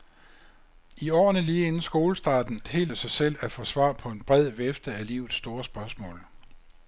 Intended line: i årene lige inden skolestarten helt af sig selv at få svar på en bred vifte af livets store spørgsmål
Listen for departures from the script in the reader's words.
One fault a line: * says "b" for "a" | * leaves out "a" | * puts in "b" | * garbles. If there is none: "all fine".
all fine